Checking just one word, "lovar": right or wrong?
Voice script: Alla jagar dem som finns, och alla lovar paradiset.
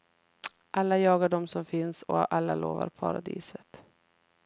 right